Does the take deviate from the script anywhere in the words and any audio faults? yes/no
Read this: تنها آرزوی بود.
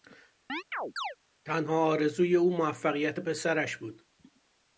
yes